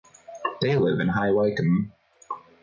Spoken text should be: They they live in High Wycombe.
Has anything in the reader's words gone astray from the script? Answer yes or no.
yes